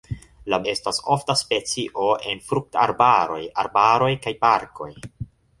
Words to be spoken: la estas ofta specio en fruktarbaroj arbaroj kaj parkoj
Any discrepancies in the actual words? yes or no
no